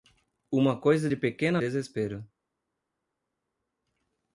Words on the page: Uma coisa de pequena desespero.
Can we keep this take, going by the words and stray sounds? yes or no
yes